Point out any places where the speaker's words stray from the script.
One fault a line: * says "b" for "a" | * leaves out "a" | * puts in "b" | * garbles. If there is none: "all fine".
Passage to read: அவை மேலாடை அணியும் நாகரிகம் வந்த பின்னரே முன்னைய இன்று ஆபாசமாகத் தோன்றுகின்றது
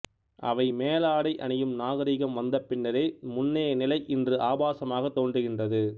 * puts in "நிலை"